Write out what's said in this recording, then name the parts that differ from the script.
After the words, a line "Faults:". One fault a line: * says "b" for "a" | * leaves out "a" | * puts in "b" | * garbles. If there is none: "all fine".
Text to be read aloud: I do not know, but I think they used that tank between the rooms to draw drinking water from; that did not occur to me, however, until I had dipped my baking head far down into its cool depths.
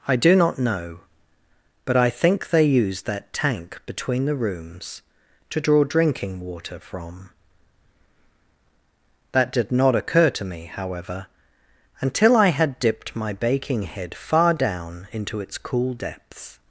I do not know, but I think they used that tank between the rooms to draw drinking water from; that did not occur to me, however, until I had dipped my baking head far down into its cool depths.
Faults:
all fine